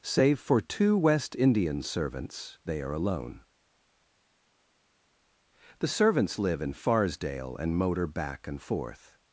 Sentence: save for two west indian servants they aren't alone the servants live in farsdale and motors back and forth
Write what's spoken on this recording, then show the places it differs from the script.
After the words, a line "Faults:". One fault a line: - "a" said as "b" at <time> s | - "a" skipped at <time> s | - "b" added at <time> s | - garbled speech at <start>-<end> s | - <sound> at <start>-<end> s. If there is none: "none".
save for two west indian servants they are alone the servants live in farsdale and motor back and forth
Faults:
- "aren't" said as "are" at 2.8 s
- "motors" said as "motor" at 7.8 s